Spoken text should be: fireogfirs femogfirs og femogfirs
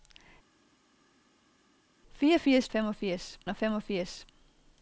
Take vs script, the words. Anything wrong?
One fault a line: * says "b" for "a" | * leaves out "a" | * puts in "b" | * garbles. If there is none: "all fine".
all fine